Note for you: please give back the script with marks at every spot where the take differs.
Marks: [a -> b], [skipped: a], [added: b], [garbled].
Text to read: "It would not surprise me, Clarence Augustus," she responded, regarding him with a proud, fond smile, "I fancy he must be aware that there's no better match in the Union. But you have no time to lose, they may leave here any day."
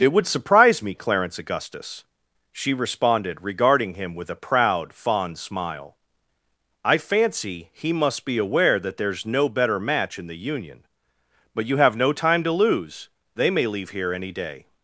"It would [skipped: not] surprise me, Clarence Augustus," she responded, regarding him with a proud, fond smile, "I fancy he must be aware that there's no better match in the Union. But you have no time to lose, they may leave here any day."